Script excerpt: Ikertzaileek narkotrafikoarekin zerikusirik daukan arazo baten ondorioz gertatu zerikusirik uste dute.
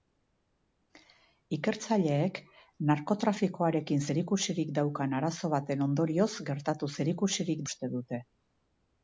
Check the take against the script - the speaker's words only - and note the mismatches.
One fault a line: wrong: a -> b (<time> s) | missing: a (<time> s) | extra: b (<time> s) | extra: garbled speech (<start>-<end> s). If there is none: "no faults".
no faults